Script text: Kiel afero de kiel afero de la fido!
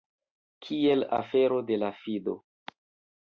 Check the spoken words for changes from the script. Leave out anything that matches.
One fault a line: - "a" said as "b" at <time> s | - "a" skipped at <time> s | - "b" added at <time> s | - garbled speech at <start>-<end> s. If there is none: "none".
- "kiel afero de" skipped at 1.8 s